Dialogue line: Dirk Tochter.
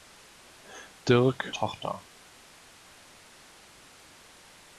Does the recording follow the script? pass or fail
pass